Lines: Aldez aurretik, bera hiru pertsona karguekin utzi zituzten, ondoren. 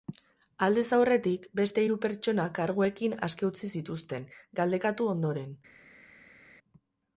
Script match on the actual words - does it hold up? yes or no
no